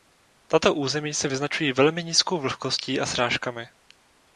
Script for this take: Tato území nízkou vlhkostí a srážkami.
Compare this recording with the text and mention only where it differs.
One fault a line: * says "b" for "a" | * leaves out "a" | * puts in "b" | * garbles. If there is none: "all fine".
* puts in "se vyznačují velmi"